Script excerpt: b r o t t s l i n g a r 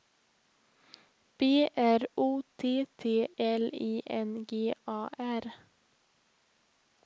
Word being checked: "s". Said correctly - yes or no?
no